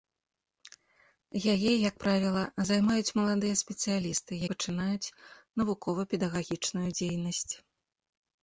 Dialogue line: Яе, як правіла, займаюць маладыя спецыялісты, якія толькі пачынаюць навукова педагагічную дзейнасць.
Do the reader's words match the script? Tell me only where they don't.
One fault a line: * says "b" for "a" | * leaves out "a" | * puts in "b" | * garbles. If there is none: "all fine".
* leaves out "якія толькі"